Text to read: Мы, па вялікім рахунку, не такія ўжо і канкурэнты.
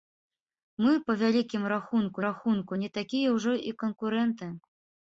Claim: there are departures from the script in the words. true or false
true